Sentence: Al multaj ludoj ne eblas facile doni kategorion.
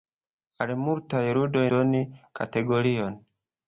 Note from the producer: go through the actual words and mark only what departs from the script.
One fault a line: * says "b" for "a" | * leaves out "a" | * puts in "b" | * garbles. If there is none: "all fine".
* leaves out "ne eblas facile"